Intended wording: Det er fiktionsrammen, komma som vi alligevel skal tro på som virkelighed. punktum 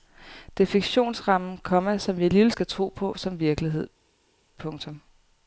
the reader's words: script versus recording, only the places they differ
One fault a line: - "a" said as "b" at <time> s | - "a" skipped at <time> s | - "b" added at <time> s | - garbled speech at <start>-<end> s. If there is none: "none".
none